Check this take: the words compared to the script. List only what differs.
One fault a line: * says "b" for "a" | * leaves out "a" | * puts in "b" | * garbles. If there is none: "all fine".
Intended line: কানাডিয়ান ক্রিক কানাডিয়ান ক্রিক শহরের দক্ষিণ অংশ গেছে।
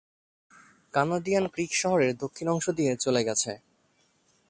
* leaves out "কানাডিয়ান ক্রিক"
* puts in "দিয়ে চলে"